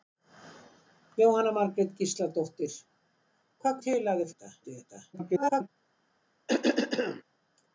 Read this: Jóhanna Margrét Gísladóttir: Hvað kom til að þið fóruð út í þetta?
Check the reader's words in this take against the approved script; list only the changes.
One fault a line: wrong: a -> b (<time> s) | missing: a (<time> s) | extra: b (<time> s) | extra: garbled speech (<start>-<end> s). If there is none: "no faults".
missing: kom (3.8 s)
wrong: fóruð -> þetta (4.3 s)
extra: garbled speech (5.1-5.7 s)